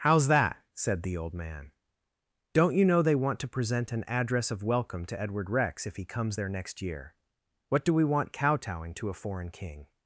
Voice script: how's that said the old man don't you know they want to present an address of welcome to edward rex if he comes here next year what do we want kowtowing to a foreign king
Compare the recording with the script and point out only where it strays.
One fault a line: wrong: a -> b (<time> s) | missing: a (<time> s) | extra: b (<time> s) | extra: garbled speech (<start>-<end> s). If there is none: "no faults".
wrong: here -> there (6.3 s)